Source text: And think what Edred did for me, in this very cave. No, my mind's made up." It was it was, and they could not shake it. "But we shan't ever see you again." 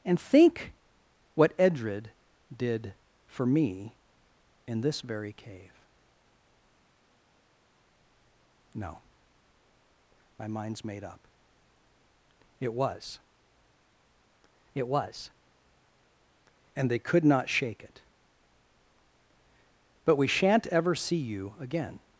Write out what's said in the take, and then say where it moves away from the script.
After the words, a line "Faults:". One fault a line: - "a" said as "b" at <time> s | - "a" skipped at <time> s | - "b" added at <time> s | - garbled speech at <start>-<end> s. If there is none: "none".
And think what Edred did for me, in this very cave. No, my mind's made up." It was it was, and they could not shake it. "But we shan't ever see you again."
Faults:
none